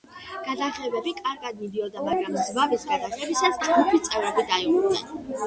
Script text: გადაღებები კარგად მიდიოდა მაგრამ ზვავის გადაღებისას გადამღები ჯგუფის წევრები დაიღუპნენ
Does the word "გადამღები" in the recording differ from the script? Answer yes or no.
yes